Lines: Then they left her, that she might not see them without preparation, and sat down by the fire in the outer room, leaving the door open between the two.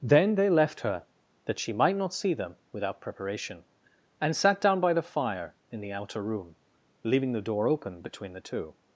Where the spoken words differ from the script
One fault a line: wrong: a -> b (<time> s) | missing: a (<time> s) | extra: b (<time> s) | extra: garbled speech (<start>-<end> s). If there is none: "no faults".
no faults